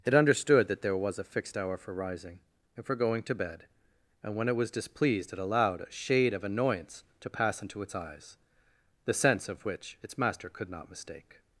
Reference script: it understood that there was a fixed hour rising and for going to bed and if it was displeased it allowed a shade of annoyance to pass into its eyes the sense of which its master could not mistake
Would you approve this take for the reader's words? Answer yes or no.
no